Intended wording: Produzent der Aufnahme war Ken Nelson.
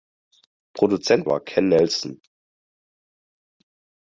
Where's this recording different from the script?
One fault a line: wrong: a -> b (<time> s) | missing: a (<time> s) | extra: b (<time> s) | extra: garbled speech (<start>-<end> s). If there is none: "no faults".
missing: der Aufnahme (1.3 s)